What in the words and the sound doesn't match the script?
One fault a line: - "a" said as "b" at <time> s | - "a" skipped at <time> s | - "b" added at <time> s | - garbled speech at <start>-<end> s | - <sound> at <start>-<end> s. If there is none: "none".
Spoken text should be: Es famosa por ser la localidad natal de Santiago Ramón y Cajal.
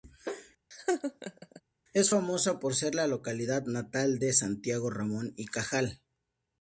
- laugh at 0.7-1.6 s